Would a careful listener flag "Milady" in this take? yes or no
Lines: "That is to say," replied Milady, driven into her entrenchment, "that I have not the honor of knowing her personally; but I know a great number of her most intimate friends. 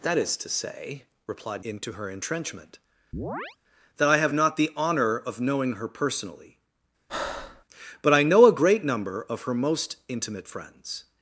yes